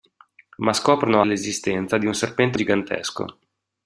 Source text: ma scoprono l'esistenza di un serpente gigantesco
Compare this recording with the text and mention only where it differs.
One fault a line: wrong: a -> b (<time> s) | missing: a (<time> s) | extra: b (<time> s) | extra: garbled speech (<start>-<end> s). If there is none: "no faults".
no faults